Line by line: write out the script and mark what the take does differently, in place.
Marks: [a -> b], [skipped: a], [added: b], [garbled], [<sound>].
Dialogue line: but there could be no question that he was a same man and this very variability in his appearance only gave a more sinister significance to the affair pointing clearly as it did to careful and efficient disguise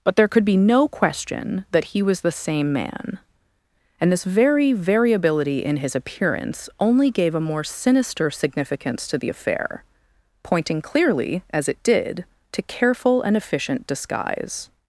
but there could be no question that he was [a -> the] same man and this very variability in his appearance only gave a more sinister significance to the affair pointing clearly as it did to careful and efficient disguise